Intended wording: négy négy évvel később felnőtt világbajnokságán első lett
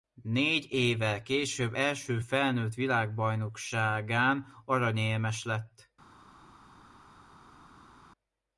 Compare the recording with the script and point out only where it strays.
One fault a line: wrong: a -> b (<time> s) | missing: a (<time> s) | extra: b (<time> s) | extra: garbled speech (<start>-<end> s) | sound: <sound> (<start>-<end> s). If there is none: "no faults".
missing: négy (0.7 s)
extra: első (1.7 s)
wrong: első -> aranyérmes (4.7 s)